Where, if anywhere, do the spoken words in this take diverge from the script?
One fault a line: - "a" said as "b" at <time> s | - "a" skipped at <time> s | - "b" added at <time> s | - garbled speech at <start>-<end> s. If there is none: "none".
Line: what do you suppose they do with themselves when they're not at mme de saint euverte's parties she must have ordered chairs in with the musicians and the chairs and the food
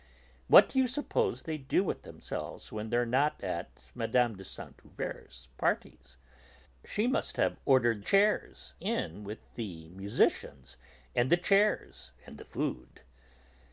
none